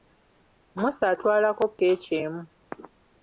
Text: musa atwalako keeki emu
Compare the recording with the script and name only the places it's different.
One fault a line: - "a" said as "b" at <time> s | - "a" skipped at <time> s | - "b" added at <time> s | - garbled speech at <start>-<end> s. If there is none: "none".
none